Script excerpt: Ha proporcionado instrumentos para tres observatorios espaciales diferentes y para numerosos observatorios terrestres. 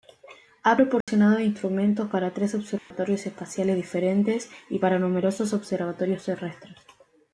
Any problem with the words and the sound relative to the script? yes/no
yes